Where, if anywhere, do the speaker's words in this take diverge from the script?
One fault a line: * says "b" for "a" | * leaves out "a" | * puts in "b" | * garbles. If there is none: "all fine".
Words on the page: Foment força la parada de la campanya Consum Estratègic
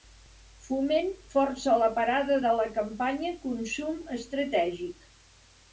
all fine